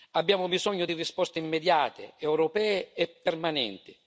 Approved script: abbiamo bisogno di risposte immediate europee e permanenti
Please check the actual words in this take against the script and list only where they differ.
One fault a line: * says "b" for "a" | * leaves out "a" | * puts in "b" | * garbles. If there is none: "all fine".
all fine